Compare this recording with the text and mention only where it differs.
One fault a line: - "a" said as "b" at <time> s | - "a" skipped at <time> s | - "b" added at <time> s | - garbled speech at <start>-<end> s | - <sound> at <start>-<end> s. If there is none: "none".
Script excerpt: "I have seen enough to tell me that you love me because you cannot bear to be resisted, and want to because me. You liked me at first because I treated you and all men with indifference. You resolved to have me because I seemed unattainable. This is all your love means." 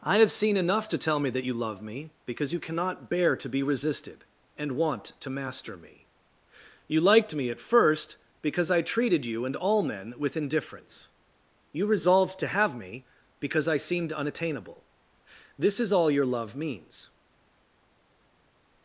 - "because" said as "master" at 5.3 s